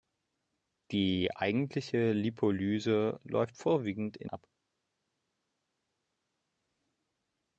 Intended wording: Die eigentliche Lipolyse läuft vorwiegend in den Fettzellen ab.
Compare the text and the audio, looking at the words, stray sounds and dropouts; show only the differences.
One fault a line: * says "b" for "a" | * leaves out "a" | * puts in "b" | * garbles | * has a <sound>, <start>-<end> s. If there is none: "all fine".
* leaves out "den Fettzellen"